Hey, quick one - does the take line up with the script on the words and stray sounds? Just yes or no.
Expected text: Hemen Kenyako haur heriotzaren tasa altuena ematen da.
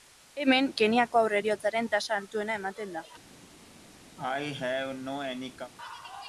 no